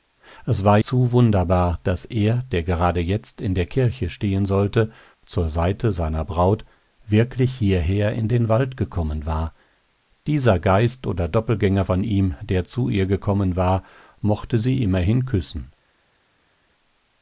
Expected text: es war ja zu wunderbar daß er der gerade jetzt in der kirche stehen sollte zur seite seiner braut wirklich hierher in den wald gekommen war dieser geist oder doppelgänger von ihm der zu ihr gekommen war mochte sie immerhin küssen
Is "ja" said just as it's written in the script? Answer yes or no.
no